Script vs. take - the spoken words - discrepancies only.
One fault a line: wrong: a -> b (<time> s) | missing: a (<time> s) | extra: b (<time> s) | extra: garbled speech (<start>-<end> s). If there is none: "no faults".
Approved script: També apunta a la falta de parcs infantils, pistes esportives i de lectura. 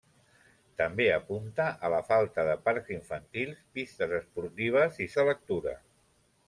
no faults